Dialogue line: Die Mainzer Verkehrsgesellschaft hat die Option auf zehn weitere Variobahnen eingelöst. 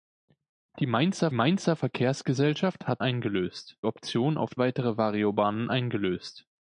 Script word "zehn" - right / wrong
wrong